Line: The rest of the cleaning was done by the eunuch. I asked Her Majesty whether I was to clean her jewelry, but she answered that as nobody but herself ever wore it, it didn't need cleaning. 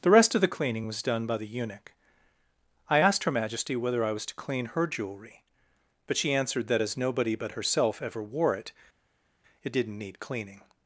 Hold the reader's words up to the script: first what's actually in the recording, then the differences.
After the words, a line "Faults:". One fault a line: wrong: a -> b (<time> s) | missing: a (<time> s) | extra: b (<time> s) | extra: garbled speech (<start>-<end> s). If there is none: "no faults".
The rest of the cleaning was done by the eunuch. I asked Her Majesty whether I was to clean her jewelry, but she answered that as nobody but herself ever wore it, it didn't need cleaning.
Faults:
no faults